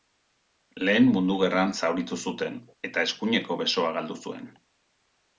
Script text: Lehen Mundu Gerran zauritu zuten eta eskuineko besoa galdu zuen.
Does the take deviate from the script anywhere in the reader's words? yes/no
no